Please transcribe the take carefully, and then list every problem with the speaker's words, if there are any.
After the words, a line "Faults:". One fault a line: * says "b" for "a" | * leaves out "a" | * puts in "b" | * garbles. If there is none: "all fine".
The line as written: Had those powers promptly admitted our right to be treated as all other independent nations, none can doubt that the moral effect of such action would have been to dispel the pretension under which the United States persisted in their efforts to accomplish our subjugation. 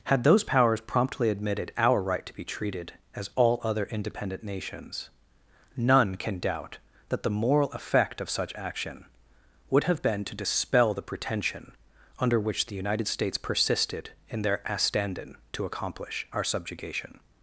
Had those powers promptly admitted our right to be treated as all other independent nations, none can doubt that the moral effect of such action would have been to dispel the pretension under which the United States persisted in their astandin to accomplish our subjugation.
Faults:
* says "astandin" for "efforts"